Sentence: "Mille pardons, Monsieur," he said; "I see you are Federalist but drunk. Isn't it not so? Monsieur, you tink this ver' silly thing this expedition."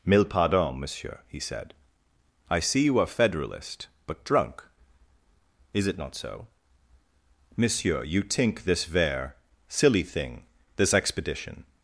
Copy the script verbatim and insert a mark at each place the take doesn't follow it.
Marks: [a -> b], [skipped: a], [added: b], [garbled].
"Mille pardons, Monsieur," he said; "I see you are Federalist but drunk. [Isn't -> Is] it not so? Monsieur, you tink this ver' silly thing this expedition."